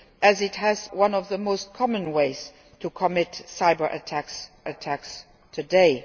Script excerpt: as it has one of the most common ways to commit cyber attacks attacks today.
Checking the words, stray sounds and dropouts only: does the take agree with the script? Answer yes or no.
yes